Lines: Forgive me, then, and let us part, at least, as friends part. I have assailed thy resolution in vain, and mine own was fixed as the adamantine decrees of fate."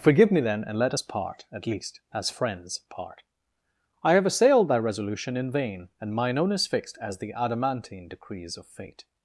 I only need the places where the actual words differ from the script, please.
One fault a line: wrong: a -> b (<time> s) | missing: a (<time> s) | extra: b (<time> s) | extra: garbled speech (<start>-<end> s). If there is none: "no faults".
wrong: was -> is (6.5 s)